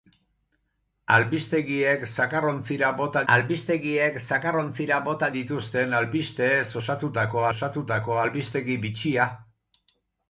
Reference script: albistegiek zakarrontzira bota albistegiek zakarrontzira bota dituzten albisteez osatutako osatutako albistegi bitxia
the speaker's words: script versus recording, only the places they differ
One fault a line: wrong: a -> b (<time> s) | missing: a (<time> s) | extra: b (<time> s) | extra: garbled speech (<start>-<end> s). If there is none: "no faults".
no faults